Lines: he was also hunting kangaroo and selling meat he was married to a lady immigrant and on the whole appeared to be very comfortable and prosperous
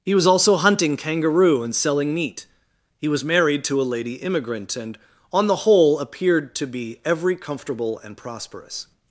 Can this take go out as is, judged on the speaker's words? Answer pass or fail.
fail